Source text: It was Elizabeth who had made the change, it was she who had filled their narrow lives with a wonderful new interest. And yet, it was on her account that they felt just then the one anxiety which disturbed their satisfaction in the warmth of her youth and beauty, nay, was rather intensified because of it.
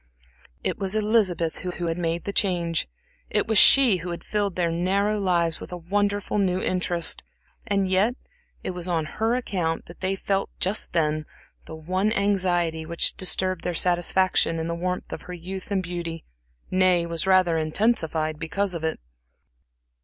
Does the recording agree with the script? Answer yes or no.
no